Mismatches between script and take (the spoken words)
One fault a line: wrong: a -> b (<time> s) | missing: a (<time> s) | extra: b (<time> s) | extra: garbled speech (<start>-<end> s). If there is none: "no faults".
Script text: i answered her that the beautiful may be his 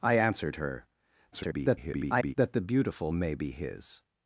extra: garbled speech (1.3-2.3 s)